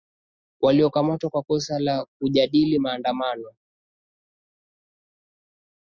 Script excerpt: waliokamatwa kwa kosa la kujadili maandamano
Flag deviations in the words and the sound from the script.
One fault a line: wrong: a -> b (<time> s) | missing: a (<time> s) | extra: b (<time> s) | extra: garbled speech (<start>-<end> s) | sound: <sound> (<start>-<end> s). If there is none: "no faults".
no faults